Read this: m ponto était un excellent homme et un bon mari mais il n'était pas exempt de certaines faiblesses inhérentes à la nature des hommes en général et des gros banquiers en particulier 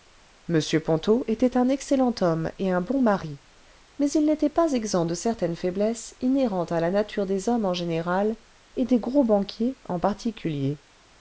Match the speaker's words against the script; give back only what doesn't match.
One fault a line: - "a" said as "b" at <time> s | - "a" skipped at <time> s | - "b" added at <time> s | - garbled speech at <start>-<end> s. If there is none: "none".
none